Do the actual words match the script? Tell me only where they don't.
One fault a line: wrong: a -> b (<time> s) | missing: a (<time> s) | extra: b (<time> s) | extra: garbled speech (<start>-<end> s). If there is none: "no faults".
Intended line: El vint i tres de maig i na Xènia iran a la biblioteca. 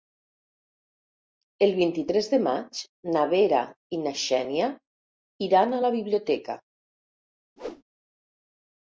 extra: na Vera (3.2 s)